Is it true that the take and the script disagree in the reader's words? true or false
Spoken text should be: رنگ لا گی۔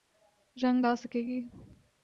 true